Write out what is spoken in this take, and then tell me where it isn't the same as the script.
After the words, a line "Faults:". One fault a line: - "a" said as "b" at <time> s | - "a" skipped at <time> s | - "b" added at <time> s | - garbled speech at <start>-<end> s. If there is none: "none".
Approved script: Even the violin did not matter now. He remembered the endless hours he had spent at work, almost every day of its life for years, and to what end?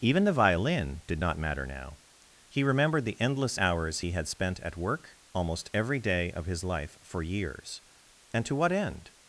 Even the violin did not matter now. He remembered the endless hours he had spent at work, almost every day of his life for years, and to what end?
Faults:
- "its" said as "his" at 6.5 s